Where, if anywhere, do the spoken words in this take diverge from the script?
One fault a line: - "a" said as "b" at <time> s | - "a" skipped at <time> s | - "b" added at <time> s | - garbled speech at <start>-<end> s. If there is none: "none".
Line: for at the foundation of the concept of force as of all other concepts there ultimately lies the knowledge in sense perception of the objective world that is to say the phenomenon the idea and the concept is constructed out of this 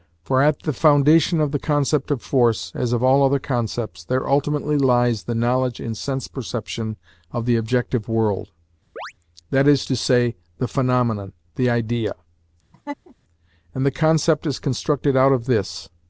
none